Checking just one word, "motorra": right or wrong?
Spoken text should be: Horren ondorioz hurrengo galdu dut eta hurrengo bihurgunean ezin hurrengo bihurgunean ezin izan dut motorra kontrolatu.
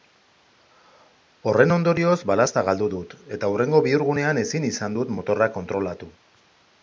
right